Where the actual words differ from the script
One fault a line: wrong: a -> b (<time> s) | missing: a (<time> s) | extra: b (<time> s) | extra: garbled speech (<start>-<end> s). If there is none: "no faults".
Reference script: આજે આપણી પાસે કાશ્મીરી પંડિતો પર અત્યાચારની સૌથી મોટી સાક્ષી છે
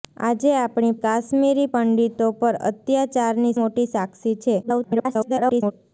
missing: પાસે (0.9 s)
missing: સૌથી (3.6 s)
extra: garbled speech (4.6-5.7 s)